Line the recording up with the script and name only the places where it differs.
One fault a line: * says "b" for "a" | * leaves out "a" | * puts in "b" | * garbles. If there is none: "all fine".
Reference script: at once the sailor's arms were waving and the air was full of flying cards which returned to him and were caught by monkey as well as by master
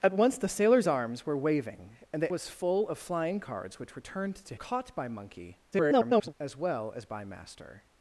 * leaves out "air"
* leaves out "him and were"
* garbles